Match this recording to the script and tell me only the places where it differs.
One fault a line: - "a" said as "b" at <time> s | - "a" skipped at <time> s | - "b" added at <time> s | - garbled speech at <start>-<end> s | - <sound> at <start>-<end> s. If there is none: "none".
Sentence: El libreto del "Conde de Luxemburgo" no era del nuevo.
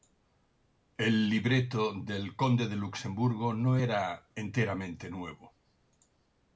- "del" said as "enteramente" at 4.3 s